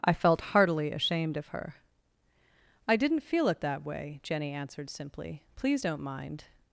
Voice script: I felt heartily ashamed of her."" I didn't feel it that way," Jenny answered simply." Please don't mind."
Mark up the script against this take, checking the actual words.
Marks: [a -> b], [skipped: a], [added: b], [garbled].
I felt heartily ashamed of her."" I didn't feel it that way," Jenny answered simply." Please don't mind."